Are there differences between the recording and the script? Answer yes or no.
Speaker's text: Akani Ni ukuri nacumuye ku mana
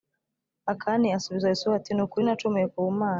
yes